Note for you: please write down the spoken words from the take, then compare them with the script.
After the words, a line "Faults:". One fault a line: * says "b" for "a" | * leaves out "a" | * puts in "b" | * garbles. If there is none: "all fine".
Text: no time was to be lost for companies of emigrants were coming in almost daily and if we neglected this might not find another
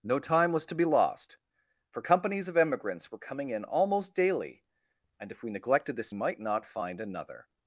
no time was to be lost for companies of emigrants were coming in almost daily and if we neglected this might not find another
Faults:
all fine